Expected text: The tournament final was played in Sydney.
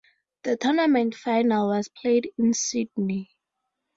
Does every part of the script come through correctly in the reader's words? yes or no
yes